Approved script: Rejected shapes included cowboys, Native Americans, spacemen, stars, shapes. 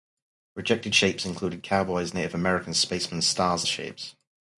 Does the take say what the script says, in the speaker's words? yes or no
yes